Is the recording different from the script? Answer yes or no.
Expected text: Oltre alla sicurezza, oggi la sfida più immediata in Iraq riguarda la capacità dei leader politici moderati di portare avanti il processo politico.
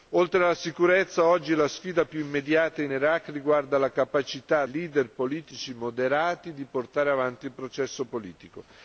yes